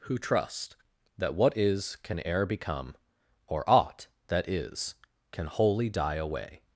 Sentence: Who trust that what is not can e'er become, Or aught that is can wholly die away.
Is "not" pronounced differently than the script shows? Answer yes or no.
yes